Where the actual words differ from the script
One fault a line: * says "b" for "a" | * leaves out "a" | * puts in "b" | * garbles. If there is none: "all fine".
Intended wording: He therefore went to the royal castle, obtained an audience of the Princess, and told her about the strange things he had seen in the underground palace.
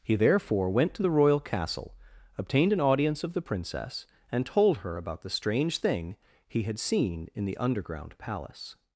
* says "thing" for "things"